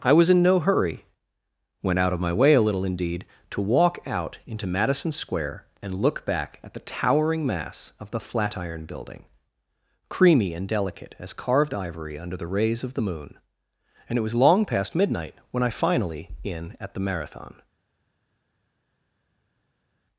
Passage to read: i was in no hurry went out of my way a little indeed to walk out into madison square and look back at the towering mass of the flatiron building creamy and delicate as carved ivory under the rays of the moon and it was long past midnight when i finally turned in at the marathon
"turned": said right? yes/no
no